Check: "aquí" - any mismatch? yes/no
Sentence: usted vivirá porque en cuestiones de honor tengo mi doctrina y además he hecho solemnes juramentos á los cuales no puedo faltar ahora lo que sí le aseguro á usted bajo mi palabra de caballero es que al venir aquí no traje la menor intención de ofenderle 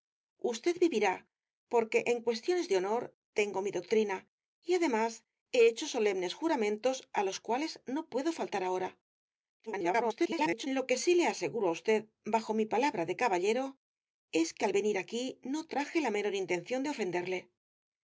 no